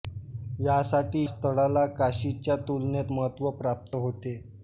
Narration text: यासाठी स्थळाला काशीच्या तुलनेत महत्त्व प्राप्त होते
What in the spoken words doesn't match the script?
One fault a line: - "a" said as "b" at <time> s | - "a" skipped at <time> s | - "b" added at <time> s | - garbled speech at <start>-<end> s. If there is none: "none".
none